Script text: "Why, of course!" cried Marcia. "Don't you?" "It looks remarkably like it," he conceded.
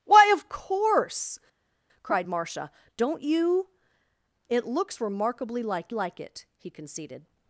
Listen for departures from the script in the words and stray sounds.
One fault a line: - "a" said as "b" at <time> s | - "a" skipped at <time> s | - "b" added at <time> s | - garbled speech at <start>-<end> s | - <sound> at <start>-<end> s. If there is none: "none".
- "like" added at 5.9 s